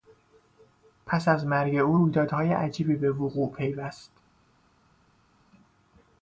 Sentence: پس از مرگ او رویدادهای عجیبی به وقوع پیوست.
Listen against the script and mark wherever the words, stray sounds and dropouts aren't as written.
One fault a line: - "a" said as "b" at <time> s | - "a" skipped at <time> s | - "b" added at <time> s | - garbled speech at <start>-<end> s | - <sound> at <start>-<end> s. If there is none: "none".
none